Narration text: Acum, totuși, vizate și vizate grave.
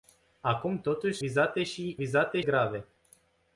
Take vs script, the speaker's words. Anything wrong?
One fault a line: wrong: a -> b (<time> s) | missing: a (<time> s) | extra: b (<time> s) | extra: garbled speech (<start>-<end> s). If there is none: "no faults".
no faults